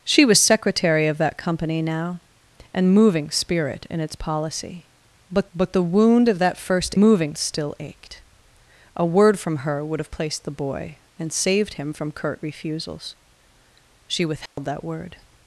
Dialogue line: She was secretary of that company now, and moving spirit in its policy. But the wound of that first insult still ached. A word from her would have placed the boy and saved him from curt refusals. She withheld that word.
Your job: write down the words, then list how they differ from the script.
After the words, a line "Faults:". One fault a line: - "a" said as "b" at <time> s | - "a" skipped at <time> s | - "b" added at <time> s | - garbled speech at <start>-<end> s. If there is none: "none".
She was secretary of that company now, and moving spirit in its policy. But but the wound of that first moving still ached. A word from her would have placed the boy and saved him from curt refusals. She withheld that word.
Faults:
- "but" added at 5.5 s
- "insult" said as "moving" at 7.0 s